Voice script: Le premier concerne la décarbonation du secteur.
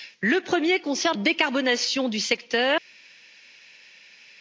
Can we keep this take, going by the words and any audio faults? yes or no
no